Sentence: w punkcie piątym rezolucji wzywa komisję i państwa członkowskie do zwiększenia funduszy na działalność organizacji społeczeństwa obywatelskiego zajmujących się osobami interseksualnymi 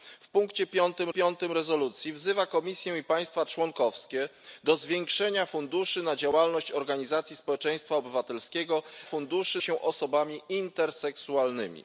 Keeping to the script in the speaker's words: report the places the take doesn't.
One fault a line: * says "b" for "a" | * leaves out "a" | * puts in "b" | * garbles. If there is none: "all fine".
* puts in "piątym"
* says "funduszy" for "zajmujących"